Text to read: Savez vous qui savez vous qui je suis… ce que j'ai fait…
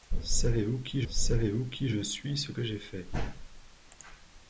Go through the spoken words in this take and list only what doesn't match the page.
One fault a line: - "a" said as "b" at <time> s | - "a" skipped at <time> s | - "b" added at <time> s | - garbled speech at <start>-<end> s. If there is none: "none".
none